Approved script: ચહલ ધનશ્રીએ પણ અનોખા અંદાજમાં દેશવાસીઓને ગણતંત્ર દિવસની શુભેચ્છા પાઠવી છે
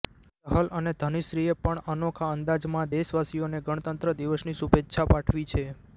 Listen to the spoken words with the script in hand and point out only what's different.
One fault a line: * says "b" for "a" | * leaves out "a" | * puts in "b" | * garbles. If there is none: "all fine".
* puts in "અને"